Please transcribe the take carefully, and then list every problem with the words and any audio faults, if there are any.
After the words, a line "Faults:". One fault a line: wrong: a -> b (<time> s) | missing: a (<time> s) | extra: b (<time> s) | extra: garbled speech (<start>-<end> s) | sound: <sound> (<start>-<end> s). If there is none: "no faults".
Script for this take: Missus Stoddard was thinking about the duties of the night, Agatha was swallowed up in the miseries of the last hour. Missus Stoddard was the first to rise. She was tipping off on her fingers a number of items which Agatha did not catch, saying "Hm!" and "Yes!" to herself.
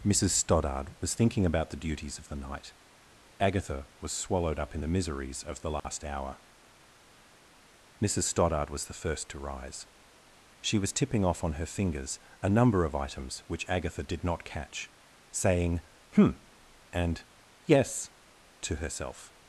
Missus Stoddard was thinking about the duties of the night, Agatha was swallowed up in the miseries of the last hour. Missus Stoddard was the first to rise. She was tipping off on her fingers a number of items which Agatha did not catch, saying "Hm!" and "Yes!" to herself.
Faults:
sound: dropout (5.8-5.8 s)